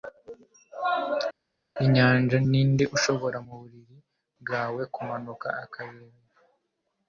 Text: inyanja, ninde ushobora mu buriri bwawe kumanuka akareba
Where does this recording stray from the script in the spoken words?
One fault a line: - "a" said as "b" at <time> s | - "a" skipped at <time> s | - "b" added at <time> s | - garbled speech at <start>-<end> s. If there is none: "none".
none